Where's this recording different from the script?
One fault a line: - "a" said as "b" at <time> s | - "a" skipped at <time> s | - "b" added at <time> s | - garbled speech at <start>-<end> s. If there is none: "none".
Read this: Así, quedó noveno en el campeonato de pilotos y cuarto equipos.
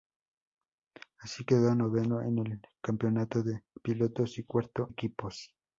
none